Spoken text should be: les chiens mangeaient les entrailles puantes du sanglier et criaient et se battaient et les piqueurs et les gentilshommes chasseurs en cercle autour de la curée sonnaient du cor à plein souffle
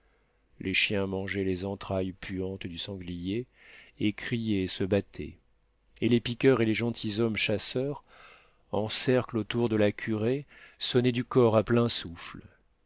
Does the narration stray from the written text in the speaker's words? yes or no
no